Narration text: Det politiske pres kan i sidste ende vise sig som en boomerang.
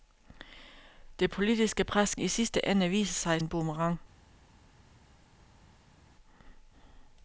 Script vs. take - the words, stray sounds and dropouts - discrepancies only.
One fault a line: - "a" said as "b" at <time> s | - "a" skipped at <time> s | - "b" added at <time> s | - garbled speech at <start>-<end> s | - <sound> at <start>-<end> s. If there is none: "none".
- "kan" skipped at 2.1 s
- "som" skipped at 3.4 s